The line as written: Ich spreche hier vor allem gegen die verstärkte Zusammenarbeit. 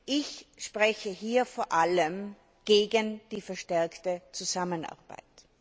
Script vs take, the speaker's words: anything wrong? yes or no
no